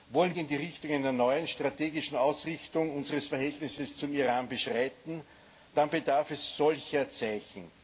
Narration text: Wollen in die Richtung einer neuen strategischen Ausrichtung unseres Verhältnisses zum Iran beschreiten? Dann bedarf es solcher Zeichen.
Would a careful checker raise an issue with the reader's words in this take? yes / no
no